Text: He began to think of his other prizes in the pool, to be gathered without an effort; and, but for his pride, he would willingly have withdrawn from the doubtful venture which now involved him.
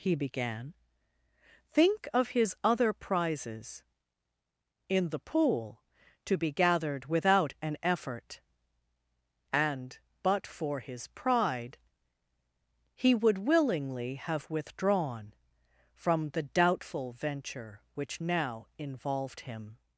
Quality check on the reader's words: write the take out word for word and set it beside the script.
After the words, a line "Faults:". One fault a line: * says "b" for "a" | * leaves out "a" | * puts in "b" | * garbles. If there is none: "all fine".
He began think of his other prizes in the pool, to be gathered without an effort; and, but for his pride, he would willingly have withdrawn from the doubtful venture which now involved him.
Faults:
* leaves out "to"